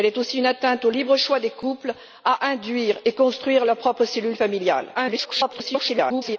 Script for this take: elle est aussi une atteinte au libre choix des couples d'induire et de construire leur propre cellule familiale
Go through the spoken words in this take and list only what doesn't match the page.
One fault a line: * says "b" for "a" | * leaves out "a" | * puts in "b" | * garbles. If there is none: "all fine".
* garbles